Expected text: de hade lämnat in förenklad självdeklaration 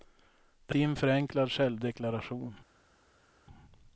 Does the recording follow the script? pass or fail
fail